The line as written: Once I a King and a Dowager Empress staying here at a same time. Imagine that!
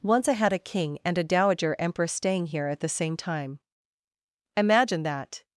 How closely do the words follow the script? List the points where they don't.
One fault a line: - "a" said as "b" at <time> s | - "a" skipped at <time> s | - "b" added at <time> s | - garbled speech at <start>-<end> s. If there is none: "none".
- "had" added at 0.3 s
- "a" said as "the" at 2.8 s